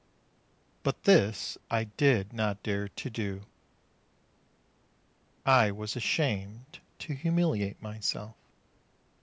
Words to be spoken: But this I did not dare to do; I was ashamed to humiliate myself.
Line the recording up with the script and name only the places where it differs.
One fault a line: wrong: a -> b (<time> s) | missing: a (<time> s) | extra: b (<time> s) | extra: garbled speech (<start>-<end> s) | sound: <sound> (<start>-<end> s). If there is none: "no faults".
no faults